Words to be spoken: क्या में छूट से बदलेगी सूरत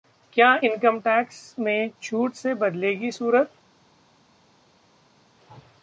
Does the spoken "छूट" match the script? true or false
true